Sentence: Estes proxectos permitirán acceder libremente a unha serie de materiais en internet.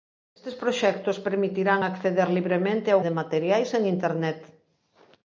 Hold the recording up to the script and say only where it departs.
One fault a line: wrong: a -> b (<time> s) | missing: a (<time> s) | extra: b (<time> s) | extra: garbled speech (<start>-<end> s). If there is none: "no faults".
missing: unha serie (3.0 s)